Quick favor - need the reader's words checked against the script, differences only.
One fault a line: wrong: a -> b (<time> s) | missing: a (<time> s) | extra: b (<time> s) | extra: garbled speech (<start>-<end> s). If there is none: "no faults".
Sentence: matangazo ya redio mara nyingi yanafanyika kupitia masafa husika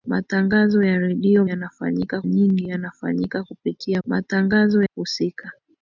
wrong: mara -> yanafanyika (1.5 s)
wrong: masafa -> matangazo (4.1 s)